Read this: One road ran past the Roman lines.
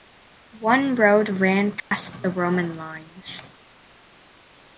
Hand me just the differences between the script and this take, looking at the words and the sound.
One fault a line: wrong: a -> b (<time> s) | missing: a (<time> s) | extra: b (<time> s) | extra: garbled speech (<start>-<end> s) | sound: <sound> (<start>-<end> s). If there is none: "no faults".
sound: dropout (1.8-1.9 s)